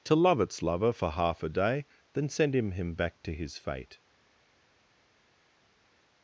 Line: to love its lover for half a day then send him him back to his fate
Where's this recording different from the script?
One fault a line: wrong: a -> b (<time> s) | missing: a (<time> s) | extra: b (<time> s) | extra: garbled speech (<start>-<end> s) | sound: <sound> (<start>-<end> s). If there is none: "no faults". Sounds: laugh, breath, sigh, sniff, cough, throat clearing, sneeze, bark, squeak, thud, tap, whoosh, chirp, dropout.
no faults